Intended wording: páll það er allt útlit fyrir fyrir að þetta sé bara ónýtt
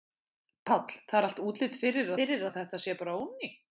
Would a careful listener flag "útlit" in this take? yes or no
no